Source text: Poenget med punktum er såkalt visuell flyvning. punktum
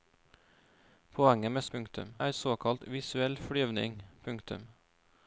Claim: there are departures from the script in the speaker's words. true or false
false